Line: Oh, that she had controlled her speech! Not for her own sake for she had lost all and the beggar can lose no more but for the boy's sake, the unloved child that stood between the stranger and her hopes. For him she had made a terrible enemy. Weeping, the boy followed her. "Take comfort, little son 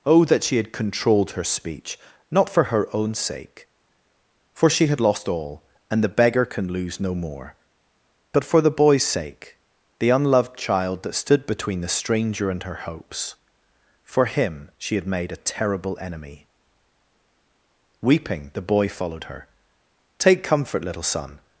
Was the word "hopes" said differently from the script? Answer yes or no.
no